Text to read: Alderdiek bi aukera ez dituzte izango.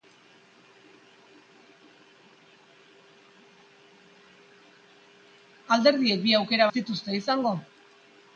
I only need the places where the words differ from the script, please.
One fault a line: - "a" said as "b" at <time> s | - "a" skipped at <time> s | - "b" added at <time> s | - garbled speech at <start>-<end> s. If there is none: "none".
none